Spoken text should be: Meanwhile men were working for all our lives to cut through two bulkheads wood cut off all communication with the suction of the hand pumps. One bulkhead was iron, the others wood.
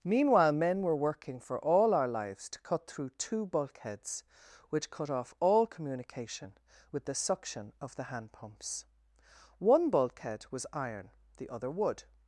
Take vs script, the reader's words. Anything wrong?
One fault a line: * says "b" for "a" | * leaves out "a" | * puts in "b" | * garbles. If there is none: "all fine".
* says "which" for "wood"
* says "other" for "others"